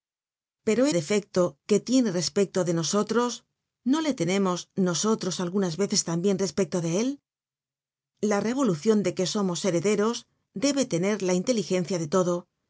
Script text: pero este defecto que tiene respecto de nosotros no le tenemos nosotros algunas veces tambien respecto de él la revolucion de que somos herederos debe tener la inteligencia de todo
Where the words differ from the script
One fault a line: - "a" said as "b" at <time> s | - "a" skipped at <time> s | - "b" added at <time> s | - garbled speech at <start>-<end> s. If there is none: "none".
- "este" skipped at 0.8 s